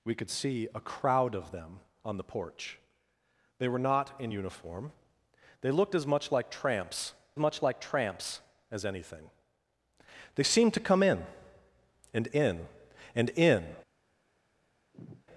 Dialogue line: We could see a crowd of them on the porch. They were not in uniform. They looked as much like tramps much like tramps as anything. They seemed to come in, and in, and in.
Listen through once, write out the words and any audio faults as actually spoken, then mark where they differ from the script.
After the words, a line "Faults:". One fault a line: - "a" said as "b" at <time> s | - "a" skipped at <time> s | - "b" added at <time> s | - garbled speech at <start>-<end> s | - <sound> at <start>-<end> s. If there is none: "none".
We could see a crowd of them on the porch. They were not in uniform. They looked as much like tramps much like tramps as anything. They seemed to come in, and in, and in.
Faults:
- sigh at 14.9-15.2 s